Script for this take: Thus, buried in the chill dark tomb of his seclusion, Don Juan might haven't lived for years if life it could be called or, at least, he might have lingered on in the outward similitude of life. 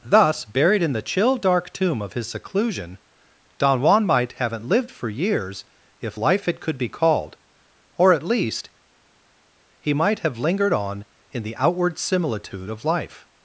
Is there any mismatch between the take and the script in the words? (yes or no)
no